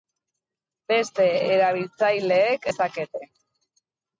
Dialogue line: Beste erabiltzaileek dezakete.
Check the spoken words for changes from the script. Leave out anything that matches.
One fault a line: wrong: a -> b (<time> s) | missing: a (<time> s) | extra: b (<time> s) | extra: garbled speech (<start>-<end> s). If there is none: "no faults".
no faults